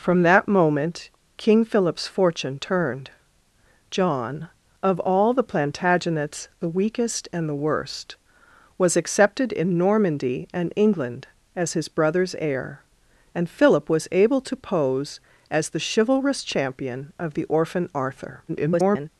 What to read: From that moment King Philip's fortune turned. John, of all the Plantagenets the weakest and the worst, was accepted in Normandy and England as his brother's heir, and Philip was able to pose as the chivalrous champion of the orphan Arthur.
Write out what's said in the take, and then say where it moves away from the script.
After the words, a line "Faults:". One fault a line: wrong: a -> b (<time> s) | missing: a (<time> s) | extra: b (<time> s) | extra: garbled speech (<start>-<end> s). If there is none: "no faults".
From that moment King Philip's fortune turned. John, of all the Plantagenets the weakest and the worst, was accepted in Normandy and England as his brother's heir, and Philip was able to pose as the chivalrous champion of the orphan Arthur. [garbled]
Faults:
extra: garbled speech (18.5-19.1 s)